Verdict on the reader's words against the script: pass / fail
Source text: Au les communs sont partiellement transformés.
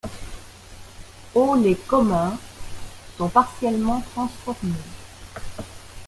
pass